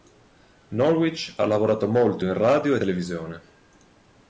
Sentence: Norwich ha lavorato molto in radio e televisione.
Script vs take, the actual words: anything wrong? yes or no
no